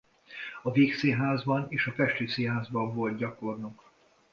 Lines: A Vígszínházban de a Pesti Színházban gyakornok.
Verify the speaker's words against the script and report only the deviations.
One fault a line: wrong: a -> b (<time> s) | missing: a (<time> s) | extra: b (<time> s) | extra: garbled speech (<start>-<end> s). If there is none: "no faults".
wrong: de -> és (1.7 s)
extra: volt (2.9 s)